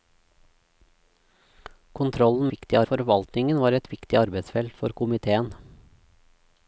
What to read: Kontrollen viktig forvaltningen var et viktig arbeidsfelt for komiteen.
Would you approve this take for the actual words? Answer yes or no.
yes